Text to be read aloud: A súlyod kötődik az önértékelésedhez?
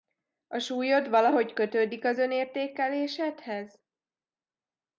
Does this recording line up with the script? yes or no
no